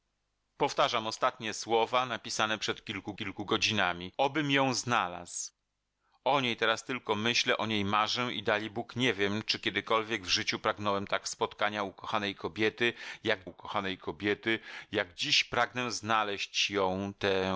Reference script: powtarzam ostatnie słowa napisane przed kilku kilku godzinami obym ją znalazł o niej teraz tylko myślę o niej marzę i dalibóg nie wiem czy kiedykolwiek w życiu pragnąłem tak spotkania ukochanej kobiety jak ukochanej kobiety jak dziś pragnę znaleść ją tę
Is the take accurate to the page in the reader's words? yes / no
yes